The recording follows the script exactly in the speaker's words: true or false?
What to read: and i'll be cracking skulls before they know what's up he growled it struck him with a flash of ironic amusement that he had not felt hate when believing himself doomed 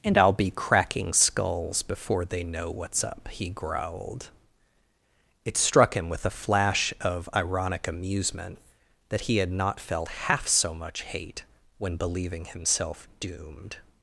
false